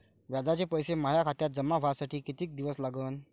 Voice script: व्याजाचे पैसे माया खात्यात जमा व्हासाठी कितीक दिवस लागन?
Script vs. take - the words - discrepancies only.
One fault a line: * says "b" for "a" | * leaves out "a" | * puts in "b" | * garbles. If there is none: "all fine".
all fine